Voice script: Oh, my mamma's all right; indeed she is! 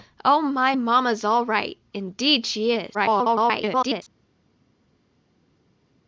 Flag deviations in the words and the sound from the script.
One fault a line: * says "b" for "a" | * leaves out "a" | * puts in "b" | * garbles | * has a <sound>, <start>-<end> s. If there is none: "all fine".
* garbles